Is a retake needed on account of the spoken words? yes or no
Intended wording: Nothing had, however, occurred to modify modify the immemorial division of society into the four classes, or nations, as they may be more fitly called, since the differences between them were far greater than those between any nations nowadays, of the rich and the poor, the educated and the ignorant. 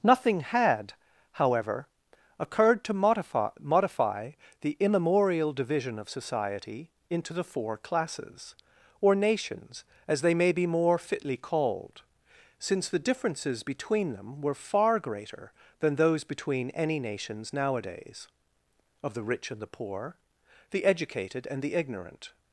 no